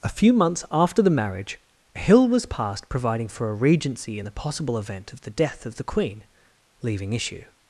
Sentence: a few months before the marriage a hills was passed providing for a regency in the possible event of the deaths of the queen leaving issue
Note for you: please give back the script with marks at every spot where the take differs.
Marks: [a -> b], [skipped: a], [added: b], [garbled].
a few months [before -> after] the marriage a [hills -> hill] was passed providing for a regency in the possible event of the [deaths -> death] of the queen leaving issue